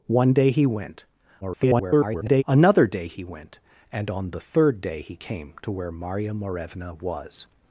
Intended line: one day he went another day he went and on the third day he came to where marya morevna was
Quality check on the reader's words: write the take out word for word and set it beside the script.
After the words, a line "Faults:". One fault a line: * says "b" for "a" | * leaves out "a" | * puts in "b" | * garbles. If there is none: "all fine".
one day he went [garbled] another day he went and on the third day he came to where marya morevna was
Faults:
* garbles